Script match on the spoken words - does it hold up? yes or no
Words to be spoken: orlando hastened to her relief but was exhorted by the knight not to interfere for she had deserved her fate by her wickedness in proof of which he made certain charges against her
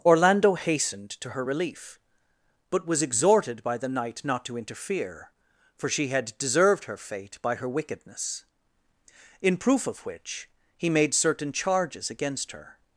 yes